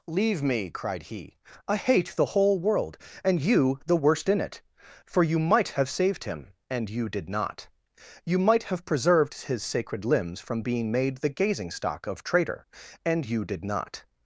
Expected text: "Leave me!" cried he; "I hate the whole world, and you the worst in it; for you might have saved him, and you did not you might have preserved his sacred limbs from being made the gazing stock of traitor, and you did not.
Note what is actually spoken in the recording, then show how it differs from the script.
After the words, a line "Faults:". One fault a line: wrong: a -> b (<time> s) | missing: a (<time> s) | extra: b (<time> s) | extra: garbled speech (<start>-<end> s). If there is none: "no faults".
"Leave me!" cried he; "I hate the whole world, and you the worst in it; for you might have saved him, and you did not you might have preserved his sacred limbs from being made the gazing stock of traitor, and you did not.
Faults:
no faults